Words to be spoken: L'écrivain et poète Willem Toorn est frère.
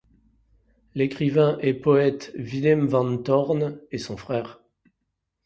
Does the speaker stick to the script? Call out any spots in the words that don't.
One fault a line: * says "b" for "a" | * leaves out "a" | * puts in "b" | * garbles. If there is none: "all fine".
* puts in "van"
* puts in "son"